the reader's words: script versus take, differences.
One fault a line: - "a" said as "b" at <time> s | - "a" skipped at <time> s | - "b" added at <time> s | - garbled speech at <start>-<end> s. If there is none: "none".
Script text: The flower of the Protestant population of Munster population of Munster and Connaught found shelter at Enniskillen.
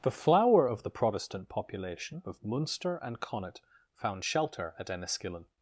- "population of Munster" skipped at 3.0 s